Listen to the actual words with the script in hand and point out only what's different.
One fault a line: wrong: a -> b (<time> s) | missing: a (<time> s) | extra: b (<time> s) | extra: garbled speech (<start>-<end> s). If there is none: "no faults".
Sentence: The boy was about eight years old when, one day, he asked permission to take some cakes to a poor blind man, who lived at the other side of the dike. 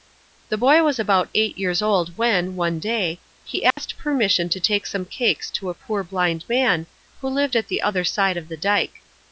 no faults